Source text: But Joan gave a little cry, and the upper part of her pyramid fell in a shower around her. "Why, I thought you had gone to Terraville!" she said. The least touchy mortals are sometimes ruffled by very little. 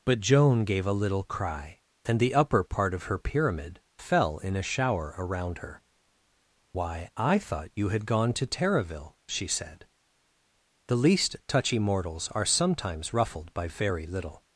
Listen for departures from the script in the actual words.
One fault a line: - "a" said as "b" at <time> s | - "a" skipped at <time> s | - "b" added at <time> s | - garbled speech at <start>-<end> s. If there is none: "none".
none